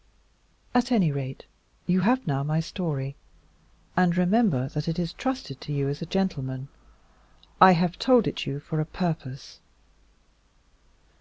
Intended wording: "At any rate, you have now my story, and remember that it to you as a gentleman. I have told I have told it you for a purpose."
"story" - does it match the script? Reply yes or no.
yes